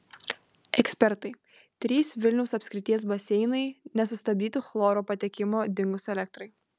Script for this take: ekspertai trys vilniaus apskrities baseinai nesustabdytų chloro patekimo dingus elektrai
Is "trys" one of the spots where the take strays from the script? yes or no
no